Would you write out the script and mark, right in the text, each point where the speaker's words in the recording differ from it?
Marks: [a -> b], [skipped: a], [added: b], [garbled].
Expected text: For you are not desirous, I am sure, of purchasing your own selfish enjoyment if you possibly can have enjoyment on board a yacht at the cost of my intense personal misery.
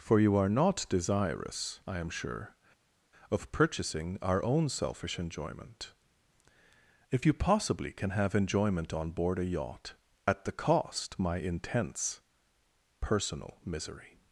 For you are not desirous, I am sure, of purchasing [your -> our] own selfish enjoyment if you possibly can have enjoyment on board a yacht at the cost [skipped: of] my intense personal misery.